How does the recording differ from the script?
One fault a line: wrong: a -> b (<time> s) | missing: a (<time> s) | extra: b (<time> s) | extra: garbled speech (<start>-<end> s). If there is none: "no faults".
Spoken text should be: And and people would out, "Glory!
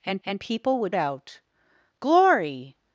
no faults